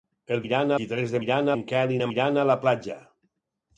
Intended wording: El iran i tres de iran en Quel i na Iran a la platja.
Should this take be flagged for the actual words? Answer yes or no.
no